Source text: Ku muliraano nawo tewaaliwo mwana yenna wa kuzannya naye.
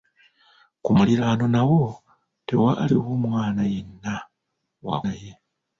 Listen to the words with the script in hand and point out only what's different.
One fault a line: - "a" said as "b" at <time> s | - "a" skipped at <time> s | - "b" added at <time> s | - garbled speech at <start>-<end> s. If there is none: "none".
- "kuzannya" skipped at 5.0 s